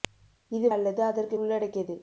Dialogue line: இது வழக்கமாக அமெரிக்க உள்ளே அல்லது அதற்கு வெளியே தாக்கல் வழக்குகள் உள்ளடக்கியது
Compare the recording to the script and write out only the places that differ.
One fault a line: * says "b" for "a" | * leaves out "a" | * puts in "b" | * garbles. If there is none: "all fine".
* leaves out "வழக்கமாக அமெரிக்க உள்ளே"
* leaves out "வெளியே தாக்கல் வழக்குகள்"